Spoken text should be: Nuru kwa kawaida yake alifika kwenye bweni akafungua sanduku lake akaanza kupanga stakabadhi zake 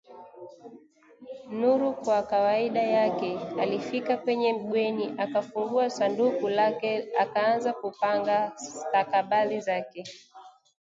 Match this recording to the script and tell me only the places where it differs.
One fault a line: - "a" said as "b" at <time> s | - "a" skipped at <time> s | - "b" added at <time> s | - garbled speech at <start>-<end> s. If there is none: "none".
none